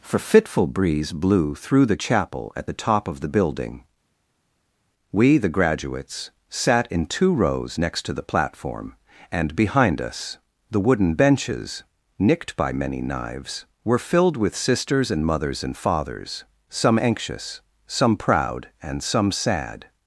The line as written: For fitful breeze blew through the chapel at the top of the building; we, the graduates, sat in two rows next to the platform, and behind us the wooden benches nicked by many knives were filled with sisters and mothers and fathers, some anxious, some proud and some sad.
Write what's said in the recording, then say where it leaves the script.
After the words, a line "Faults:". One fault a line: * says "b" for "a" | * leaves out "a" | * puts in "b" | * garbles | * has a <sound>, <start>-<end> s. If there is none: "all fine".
For fitful breeze blew through the chapel at the top of the building; we, the graduates, sat in two rows next to the platform, and behind us the wooden benches nicked by many knives were filled with sisters and mothers and fathers, some anxious, some proud and some sad.
Faults:
all fine